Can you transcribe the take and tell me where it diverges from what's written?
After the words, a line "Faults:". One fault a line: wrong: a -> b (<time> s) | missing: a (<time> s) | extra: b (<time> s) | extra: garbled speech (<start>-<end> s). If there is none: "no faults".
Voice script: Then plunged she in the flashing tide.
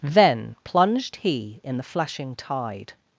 Then plunged he in the flashing tide.
Faults:
wrong: she -> he (1.1 s)